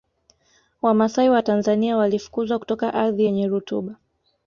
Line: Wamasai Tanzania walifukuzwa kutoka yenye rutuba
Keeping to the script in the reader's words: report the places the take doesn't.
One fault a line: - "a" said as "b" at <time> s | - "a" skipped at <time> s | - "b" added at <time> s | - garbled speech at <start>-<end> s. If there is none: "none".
- "wa" added at 1.3 s
- "ardhi" added at 2.9 s